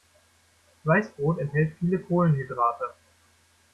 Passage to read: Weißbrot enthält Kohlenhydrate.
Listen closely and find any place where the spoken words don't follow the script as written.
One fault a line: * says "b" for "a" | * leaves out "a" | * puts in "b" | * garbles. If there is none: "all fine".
* puts in "viele"